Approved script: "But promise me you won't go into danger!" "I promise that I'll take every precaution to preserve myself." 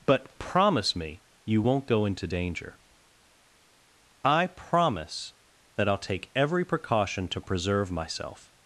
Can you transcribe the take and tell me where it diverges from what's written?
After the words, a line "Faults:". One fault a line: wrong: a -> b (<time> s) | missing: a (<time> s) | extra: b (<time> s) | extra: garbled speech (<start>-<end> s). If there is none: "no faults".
"But promise me you won't go into danger!" "I promise that I'll take every precaution to preserve myself."
Faults:
no faults